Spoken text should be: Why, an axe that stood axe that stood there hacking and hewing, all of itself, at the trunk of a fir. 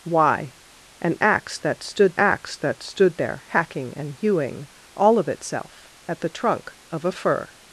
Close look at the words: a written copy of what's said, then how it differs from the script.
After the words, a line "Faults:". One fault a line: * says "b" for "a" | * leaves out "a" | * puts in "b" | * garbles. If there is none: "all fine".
Why, an axe that stood axe that stood there hacking and hewing, all of itself, at the trunk of a fir.
Faults:
all fine